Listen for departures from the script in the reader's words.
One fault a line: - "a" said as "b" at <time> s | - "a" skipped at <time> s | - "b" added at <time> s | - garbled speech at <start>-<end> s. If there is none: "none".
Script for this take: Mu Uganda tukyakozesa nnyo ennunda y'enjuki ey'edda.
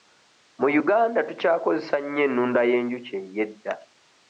none